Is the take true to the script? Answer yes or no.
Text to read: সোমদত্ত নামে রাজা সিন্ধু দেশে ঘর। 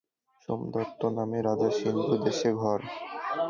yes